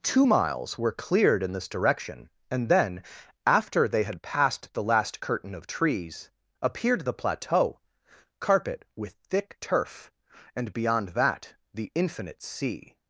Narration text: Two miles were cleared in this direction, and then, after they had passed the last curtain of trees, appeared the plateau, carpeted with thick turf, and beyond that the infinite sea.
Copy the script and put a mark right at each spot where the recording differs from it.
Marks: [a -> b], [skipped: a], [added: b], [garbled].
Two miles were cleared in this direction, and then, after they had passed the last curtain of trees, appeared the plateau, [carpeted -> carpet] with thick turf, and beyond that the infinite sea.